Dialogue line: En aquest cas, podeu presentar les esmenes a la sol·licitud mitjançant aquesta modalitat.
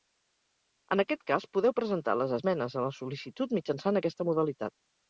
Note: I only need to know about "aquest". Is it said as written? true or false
true